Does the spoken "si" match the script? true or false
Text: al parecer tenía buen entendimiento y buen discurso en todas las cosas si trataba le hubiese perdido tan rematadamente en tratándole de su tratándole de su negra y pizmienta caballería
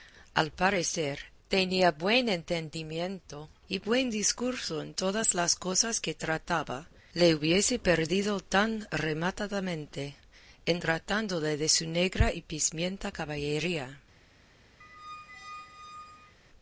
false